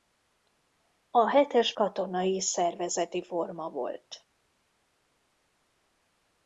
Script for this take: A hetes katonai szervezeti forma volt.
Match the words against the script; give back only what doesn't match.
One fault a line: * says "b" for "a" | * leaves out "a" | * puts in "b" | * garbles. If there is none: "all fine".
all fine